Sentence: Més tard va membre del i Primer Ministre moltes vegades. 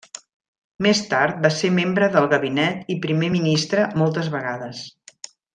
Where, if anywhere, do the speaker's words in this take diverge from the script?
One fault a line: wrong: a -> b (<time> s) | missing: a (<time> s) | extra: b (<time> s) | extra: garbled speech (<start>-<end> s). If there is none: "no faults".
extra: ser (1.6 s)
extra: gabinet (2.3 s)